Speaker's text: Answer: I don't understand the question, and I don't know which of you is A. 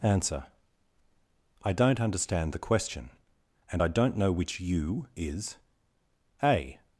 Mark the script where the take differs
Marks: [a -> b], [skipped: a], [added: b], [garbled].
Answer: I don't understand the question, and I don't know which [skipped: of] you is A.